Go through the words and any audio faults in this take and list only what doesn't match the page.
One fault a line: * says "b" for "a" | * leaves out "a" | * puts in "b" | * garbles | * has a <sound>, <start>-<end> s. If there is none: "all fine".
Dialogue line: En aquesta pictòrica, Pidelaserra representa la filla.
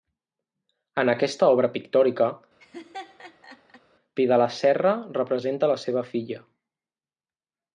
* puts in "obra"
* has a laugh, 2.6-3.8 s
* puts in "seva"